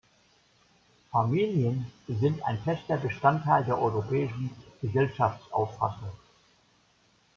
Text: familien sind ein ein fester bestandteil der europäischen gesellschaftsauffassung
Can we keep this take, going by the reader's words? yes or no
no